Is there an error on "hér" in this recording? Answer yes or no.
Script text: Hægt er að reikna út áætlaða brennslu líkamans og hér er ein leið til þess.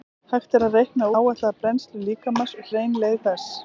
yes